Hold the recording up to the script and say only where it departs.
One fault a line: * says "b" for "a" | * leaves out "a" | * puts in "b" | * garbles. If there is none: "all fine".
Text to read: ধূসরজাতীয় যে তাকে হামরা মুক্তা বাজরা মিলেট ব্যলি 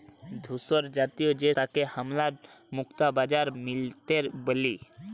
all fine